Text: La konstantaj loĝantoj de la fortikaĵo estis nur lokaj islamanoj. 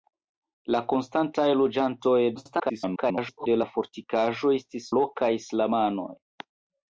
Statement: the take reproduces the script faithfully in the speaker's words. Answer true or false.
false